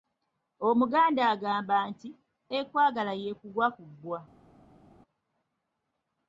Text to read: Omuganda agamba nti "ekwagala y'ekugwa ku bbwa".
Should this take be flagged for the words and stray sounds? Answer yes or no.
no